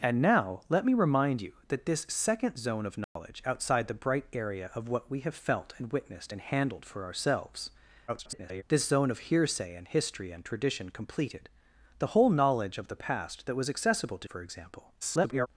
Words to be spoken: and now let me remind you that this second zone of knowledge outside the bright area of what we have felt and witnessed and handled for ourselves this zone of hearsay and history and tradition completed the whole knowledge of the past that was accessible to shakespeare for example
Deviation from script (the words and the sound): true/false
true